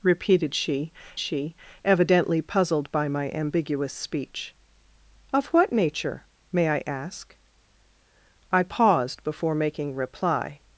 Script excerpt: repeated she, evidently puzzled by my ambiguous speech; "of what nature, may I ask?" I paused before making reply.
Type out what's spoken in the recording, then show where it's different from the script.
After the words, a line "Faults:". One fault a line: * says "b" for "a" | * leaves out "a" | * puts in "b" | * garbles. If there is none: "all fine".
repeated she she, evidently puzzled by my ambiguous speech; "of what nature, may I ask?" I paused before making reply.
Faults:
* puts in "she"